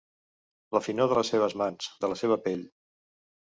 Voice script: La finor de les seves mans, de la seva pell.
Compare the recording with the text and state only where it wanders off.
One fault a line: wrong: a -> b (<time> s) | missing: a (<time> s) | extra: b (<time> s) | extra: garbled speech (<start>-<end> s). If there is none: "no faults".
no faults